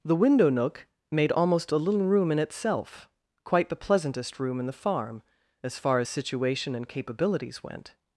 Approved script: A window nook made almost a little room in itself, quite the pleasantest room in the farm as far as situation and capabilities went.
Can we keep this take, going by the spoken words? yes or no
no